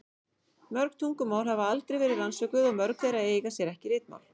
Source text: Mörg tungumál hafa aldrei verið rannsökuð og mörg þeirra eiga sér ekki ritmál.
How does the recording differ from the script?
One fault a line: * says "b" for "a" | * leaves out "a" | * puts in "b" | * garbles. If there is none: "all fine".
all fine